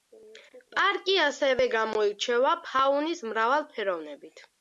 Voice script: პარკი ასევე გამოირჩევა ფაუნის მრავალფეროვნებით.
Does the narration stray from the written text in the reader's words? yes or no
no